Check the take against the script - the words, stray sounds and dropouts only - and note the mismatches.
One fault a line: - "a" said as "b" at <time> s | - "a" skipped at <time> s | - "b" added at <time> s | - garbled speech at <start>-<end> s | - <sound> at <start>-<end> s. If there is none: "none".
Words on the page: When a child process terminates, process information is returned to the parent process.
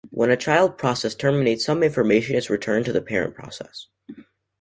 - "process" said as "some" at 1.6 s